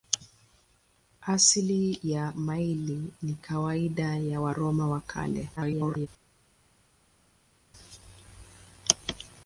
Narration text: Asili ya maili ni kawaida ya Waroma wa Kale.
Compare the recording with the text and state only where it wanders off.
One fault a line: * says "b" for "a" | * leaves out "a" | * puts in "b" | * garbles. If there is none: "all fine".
* garbles